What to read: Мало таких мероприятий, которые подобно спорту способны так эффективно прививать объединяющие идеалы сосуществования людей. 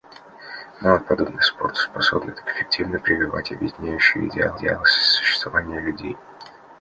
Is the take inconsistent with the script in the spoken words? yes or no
yes